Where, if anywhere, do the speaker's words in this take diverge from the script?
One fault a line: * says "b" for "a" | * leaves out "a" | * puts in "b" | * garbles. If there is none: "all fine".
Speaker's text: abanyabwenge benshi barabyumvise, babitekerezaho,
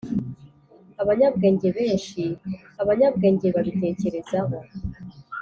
* says "abanyabwenge" for "barabyumvise"